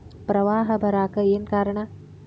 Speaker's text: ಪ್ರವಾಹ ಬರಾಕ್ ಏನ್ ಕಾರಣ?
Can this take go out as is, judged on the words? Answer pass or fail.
pass